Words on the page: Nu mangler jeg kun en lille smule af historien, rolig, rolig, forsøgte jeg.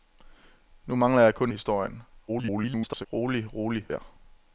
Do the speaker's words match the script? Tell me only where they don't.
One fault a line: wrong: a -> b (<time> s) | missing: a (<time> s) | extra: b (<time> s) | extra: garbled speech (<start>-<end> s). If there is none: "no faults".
missing: en lille smule (1.5 s)
extra: garbled speech (2.3-3.1 s)
missing: forsøgte (3.9 s)